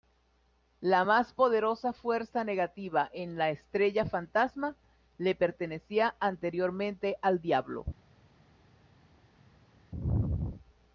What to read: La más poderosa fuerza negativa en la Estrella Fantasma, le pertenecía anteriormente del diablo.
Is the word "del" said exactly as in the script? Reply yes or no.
no